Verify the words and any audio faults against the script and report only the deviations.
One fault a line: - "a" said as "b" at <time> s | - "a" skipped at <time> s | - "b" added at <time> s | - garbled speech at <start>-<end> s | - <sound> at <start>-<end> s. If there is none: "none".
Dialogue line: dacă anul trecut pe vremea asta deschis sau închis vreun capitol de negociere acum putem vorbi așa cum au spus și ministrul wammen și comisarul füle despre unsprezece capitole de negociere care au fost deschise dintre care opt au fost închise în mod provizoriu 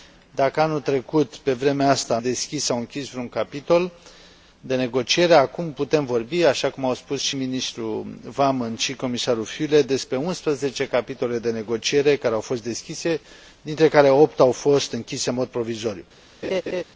- laugh at 16.4-16.8 s